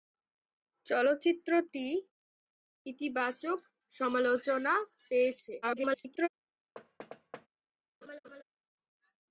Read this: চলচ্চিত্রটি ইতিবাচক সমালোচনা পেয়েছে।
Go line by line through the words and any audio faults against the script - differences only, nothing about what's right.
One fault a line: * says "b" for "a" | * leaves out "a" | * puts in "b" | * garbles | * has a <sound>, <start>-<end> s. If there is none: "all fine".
* garbles
* has a thud, 6.8-7.5 s
* has a laugh, 8.0-8.4 s